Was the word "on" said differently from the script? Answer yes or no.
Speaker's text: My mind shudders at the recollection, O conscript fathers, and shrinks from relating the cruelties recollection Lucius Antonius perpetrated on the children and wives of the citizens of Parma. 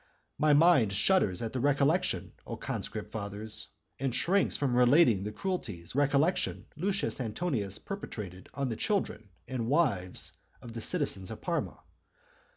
no